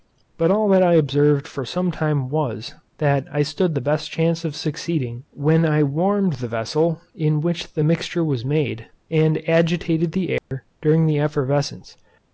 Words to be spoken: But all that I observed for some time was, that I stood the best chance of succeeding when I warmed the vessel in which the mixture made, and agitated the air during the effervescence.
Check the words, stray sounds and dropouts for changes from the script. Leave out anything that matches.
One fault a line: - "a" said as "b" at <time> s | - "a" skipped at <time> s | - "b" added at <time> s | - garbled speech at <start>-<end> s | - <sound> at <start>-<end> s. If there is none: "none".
- "was" added at 8.2 s
- dropout at 10.4-10.5 s